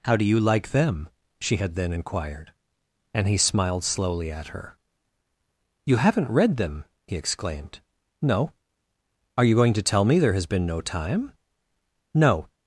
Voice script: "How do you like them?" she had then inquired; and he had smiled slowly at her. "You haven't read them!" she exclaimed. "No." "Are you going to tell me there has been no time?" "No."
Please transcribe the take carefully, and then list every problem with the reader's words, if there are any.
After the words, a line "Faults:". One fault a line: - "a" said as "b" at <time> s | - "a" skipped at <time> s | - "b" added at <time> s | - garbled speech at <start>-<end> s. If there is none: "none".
"How do you like them?" she had then inquired; and he smiled slowly at her. "You haven't read them!" he exclaimed. "No." "Are you going to tell me there has been no time?" "No."
Faults:
- "had" skipped at 3.4 s
- "she" said as "he" at 7.1 s